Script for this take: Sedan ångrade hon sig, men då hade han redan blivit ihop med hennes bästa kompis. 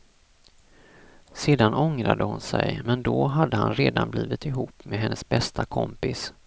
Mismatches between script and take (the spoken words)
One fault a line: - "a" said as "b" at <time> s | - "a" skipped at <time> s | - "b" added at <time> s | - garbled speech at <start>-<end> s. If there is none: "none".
none